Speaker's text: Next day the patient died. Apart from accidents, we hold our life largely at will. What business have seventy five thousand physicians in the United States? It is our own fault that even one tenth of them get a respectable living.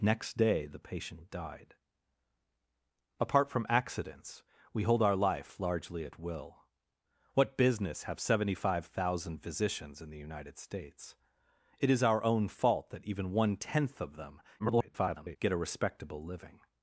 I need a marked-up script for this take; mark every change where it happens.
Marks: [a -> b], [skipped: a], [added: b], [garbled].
Next day the patient died. Apart from accidents, we hold our life largely at will. What business have seventy five thousand physicians in the United States? It is our own fault that even one tenth of them [garbled] get a respectable living.